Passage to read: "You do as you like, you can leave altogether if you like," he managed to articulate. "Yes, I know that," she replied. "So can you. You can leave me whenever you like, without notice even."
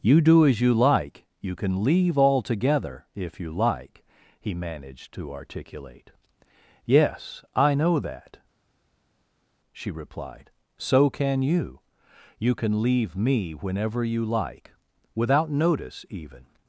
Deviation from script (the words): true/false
false